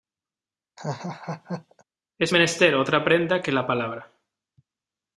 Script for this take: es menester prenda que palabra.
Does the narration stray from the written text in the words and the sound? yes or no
yes